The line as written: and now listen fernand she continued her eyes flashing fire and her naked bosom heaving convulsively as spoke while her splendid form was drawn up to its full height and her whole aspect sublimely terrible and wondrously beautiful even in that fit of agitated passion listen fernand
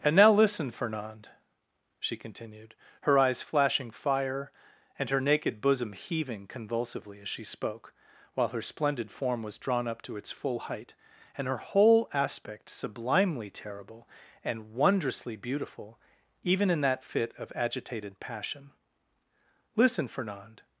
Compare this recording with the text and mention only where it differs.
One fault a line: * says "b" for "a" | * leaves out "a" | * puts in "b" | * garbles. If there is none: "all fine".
* puts in "she"